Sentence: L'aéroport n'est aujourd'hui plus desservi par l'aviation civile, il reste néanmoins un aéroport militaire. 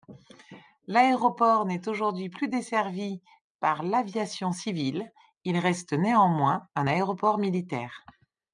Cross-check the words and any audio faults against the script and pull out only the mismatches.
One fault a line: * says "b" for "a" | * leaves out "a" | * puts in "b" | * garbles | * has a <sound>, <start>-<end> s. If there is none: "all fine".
all fine